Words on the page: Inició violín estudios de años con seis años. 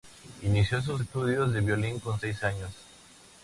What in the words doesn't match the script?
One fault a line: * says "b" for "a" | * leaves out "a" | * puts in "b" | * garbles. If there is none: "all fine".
* says "sus" for "violín"
* says "violín" for "años"